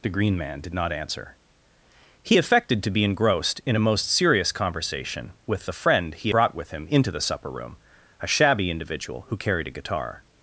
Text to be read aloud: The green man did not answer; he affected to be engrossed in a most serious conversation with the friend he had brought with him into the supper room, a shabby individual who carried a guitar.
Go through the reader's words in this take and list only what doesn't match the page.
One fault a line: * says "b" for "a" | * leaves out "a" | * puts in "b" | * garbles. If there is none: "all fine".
* leaves out "had"